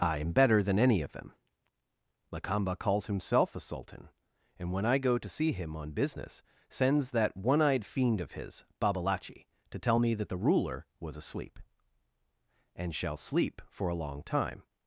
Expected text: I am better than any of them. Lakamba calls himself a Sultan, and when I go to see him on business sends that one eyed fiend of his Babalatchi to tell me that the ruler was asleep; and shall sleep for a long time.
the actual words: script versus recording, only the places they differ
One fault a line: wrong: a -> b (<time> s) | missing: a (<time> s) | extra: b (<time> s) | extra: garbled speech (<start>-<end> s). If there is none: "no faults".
no faults